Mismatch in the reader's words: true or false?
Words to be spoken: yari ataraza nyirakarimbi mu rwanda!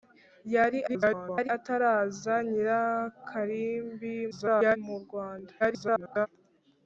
true